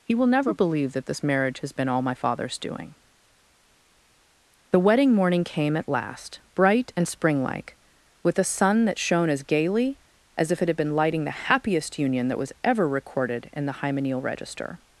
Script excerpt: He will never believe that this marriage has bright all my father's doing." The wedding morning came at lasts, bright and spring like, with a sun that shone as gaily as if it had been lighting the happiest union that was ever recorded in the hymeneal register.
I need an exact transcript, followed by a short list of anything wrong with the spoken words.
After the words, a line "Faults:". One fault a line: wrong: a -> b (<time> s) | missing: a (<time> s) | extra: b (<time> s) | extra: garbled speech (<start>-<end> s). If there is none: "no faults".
He will never believe that this marriage has been all my father's doing." The wedding morning came at last, bright and spring like, with a sun that shone as gaily as if it had been lighting the happiest union that was ever recorded in the hymeneal register.
Faults:
wrong: bright -> been (1.7 s)
wrong: lasts -> last (5.9 s)